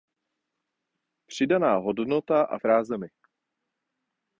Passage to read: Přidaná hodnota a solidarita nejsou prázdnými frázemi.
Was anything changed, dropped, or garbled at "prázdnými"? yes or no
yes